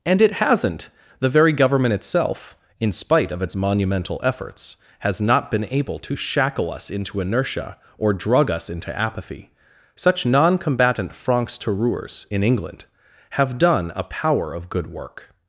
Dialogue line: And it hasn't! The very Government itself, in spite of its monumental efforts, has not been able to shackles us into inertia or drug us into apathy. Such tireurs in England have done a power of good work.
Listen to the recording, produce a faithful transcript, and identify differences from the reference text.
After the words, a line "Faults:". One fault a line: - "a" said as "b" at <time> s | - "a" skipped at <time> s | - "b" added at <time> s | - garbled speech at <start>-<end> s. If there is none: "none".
And it hasn't! The very Government itself, in spite of its monumental efforts, has not been able to shackle us into inertia or drug us into apathy. Such non combatant francs tireurs in England have done a power of good work.
Faults:
- "shackles" said as "shackle" at 6.2 s
- "non combatant francs" added at 10.3 s